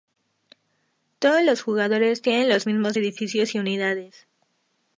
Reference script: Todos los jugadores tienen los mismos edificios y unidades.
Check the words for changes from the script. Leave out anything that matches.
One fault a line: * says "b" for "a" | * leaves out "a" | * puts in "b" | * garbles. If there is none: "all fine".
all fine